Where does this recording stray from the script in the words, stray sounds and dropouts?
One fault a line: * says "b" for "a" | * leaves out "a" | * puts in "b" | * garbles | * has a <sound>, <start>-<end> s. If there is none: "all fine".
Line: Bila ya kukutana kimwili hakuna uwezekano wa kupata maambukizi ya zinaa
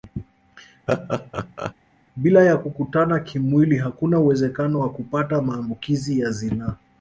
* has a laugh, 0.9-1.7 s